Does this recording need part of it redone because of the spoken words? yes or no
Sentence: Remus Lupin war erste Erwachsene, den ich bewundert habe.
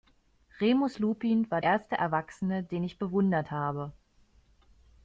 no